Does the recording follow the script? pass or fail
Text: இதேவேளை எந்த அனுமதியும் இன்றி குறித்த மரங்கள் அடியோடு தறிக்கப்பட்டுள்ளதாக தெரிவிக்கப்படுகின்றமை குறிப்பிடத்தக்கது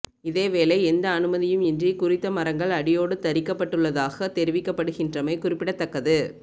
pass